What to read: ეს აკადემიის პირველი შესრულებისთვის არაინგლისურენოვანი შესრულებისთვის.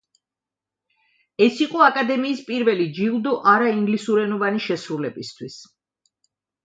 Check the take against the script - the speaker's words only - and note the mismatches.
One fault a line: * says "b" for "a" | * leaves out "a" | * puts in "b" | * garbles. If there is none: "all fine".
* puts in "იყო"
* says "ჯილდო" for "შესრულებისთვის"